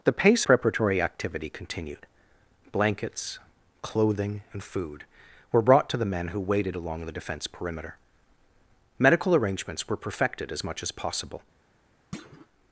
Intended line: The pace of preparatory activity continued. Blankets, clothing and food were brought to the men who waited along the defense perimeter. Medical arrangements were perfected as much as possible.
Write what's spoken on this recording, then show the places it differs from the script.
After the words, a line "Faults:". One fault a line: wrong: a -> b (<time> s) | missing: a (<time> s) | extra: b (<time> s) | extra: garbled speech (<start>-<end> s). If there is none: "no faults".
The pace preparatory activity continued. Blankets, clothing and food were brought to the men who waited along the defense perimeter. Medical arrangements were perfected as much as possible.
Faults:
missing: of (0.5 s)